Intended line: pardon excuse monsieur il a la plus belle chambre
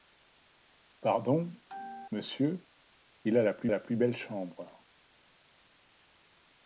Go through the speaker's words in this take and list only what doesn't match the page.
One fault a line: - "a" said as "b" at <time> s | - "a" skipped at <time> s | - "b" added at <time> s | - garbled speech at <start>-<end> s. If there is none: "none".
- "excuse" skipped at 1.5 s
- "la plus" added at 3.7 s